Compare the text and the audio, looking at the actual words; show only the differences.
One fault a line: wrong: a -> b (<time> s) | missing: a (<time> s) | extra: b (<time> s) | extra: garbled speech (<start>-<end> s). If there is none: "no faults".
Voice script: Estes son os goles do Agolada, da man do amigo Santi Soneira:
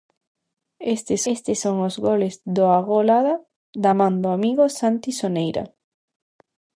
extra: estes (1.3 s)